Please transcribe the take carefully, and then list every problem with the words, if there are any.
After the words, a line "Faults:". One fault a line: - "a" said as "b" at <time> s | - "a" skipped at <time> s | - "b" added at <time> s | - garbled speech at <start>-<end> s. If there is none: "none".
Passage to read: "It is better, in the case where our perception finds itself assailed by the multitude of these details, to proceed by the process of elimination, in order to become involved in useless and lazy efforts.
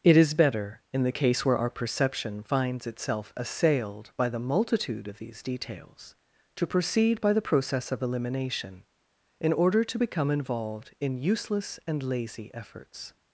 "It is better, in the case where our perception finds itself assailed by the multitude of these details, to proceed by the process of elimination, in order to become involved in useless and lazy efforts.
Faults:
none